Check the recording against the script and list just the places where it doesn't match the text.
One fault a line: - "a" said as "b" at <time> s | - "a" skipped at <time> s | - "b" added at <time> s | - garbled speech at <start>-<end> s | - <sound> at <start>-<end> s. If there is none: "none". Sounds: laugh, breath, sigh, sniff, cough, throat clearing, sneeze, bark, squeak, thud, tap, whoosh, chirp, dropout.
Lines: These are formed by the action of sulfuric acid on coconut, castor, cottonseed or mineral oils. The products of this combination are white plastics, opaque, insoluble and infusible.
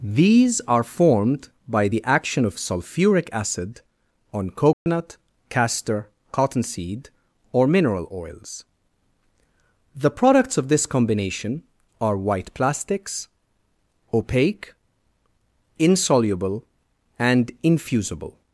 - dropout at 4.7-4.9 s